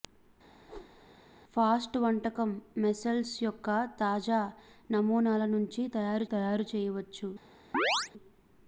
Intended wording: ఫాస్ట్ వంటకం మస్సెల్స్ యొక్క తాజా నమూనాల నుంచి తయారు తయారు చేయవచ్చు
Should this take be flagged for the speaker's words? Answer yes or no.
no